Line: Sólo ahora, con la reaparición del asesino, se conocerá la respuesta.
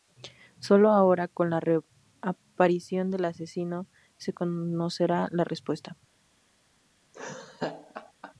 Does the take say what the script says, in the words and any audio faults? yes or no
no